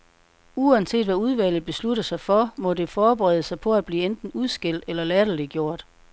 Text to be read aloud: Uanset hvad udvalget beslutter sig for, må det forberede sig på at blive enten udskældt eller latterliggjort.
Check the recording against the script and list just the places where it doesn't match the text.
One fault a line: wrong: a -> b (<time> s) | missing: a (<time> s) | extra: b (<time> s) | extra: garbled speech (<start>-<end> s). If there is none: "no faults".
no faults